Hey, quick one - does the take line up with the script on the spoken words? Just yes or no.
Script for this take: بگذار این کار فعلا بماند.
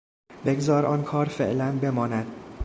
no